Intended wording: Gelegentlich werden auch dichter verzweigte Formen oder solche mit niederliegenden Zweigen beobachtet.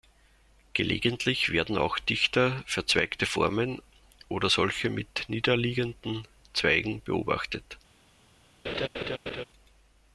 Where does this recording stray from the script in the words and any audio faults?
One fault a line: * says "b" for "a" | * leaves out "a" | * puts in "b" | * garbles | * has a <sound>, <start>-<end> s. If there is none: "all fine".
* has a laugh, 8.6-9.4 s